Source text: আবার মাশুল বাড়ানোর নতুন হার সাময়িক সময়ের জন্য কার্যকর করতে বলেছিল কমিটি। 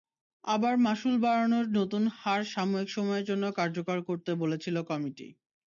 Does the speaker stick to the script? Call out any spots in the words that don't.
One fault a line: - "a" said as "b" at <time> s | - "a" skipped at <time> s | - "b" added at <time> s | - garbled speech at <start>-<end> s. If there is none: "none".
none